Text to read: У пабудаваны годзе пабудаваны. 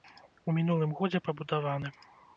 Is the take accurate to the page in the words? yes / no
no